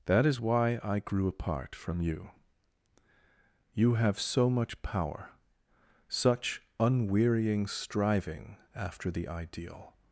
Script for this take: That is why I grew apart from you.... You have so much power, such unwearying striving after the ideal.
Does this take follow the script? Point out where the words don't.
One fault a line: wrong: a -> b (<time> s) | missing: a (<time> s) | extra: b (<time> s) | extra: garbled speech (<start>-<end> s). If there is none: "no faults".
no faults